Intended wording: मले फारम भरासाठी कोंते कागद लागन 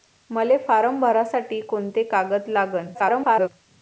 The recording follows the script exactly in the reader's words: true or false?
false